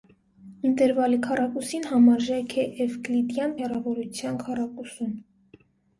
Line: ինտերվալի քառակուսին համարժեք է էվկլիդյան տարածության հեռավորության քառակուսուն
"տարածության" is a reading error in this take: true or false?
true